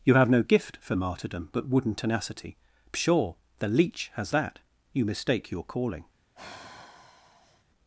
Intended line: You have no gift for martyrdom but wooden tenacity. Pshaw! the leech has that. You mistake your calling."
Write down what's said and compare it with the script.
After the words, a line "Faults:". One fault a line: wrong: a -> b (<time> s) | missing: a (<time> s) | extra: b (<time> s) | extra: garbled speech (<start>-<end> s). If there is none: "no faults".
You have no gift for martyrdom but wooden tenacity. Pshaw! the leech has that. You mistake your calling."
Faults:
no faults